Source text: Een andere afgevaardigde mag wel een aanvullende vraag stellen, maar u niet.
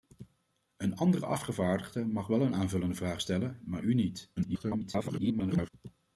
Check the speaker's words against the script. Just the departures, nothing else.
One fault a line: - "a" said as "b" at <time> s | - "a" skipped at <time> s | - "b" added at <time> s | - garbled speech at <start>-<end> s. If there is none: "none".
- garbled speech at 4.4-5.7 s